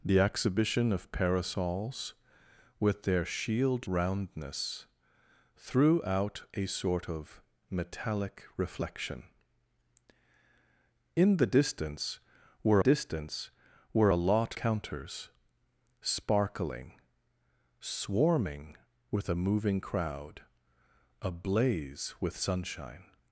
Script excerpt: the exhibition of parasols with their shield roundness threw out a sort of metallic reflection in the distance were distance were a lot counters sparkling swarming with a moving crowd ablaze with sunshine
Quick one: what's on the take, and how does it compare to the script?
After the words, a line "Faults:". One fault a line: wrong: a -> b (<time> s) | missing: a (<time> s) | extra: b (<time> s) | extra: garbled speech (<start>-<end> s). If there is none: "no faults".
the exhibition of parasols with their shield roundness threw out a sort of metallic reflection in the distance were distance were a lot counters sparkling swarming with a moving crowd ablaze with sunshine
Faults:
no faults